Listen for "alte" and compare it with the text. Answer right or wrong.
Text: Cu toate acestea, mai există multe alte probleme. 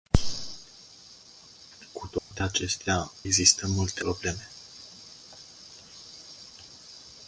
wrong